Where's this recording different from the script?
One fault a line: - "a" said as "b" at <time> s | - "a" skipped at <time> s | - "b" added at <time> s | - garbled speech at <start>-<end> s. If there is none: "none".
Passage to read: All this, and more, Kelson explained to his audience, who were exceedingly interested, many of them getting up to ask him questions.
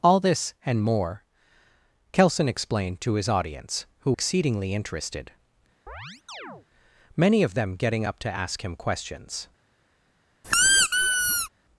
- "were" skipped at 4.1 s